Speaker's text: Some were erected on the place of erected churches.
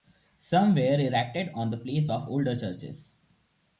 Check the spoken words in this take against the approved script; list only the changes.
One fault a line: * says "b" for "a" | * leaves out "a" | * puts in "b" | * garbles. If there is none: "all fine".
* says "older" for "erected"